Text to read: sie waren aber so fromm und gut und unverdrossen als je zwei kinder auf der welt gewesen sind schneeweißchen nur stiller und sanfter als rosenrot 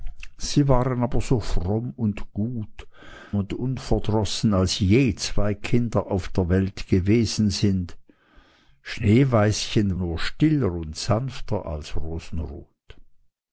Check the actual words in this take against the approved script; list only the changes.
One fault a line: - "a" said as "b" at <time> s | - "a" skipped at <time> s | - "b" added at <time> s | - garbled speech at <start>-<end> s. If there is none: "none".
none